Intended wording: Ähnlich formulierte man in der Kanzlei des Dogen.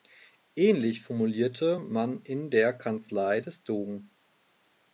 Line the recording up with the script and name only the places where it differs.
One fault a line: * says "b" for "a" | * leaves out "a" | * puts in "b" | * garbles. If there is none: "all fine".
all fine